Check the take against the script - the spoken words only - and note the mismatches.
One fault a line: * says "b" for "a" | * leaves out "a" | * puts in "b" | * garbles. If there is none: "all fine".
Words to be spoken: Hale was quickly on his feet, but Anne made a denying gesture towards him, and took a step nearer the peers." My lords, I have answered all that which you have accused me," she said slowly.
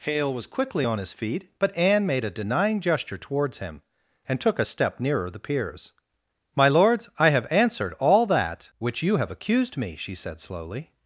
all fine